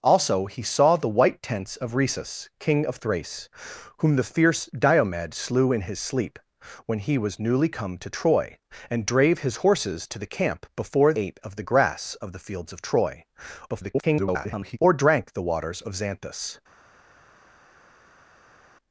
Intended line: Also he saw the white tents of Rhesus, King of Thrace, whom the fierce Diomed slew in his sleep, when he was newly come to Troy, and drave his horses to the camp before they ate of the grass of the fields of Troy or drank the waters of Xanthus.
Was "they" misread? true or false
true